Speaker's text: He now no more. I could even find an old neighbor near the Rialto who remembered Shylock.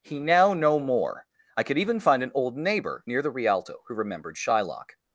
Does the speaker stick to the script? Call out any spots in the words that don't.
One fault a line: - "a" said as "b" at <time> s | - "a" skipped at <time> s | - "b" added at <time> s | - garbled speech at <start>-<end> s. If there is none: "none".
none